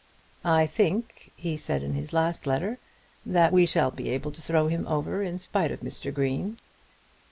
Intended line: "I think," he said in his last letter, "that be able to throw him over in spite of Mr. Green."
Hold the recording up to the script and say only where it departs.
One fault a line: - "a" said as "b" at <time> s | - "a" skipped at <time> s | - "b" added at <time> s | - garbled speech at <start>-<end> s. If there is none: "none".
- "we shall" added at 3.5 s